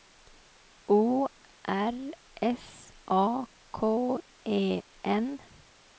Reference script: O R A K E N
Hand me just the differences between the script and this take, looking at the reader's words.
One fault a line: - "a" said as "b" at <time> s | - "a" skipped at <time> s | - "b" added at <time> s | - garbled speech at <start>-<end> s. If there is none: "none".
- "S" added at 2.4 s